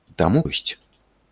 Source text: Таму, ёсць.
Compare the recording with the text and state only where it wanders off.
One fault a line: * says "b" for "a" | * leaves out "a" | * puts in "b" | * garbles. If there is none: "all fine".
all fine